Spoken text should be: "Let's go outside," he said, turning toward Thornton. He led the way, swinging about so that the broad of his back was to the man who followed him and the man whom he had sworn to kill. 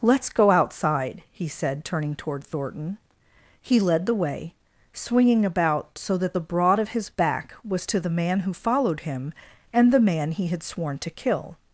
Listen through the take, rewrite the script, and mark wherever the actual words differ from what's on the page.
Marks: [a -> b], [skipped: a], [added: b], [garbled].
"Let's go outside," he said, turning toward Thornton. He led the way, swinging about so that the broad of his back was to the man who followed him and the man [skipped: whom] he had sworn to kill.